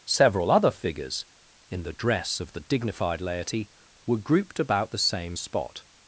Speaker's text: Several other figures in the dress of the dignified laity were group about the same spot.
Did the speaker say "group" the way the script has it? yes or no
no